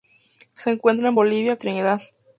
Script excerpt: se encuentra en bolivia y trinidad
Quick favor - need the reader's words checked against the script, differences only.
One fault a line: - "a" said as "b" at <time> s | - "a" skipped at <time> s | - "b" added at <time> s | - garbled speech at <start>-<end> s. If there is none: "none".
none